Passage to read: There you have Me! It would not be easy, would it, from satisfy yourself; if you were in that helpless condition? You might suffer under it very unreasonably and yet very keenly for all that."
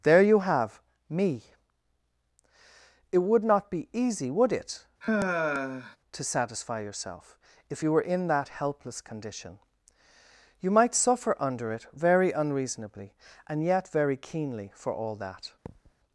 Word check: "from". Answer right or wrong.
wrong